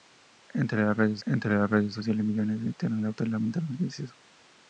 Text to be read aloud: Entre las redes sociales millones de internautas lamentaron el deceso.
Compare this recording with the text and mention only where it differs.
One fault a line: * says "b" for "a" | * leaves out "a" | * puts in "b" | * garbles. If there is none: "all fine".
* puts in "entre las redes"